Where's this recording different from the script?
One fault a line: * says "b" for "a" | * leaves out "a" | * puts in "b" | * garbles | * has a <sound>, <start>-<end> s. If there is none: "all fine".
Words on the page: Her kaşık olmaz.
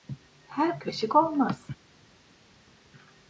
all fine